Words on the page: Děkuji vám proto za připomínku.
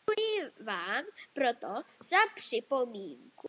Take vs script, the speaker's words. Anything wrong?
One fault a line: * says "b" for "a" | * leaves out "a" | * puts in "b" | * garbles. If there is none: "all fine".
all fine